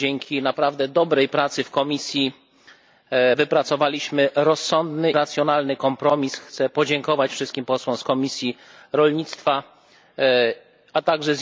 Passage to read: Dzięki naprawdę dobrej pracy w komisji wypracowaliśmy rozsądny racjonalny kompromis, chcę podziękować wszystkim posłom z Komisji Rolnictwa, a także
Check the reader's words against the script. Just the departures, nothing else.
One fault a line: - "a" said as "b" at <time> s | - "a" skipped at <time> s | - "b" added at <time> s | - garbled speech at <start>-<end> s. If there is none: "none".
none